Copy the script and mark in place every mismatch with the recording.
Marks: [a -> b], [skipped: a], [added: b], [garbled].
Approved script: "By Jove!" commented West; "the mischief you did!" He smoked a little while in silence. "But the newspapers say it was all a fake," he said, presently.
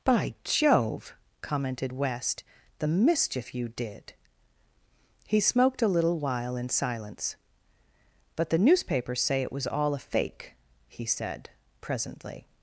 "By Jove!" commented West; "the mischief you did!" He smoked a little while in silence. "But the newspapers say it was all a fake," he said, presently.